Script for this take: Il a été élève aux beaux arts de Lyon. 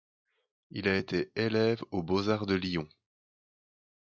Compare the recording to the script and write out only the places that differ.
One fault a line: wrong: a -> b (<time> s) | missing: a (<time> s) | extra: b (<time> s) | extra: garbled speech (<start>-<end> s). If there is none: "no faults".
no faults